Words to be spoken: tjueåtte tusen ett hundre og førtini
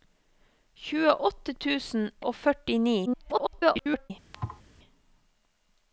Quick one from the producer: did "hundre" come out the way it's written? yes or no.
no